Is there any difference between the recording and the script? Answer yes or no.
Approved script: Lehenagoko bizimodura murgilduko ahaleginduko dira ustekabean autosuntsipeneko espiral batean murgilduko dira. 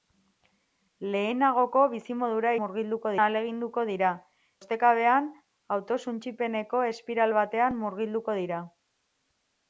no